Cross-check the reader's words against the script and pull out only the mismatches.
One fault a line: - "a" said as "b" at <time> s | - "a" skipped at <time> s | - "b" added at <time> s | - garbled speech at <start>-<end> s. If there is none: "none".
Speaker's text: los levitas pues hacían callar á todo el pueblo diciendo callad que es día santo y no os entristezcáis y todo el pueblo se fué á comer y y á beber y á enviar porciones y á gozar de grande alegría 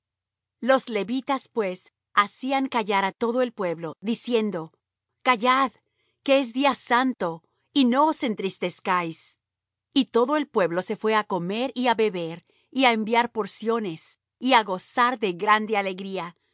- "y" skipped at 11.9 s